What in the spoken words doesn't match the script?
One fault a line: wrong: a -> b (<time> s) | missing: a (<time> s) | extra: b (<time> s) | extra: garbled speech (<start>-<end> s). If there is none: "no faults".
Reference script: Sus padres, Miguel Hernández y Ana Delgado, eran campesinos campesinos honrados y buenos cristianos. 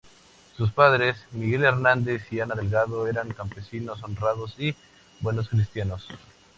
missing: campesinos (4.0 s)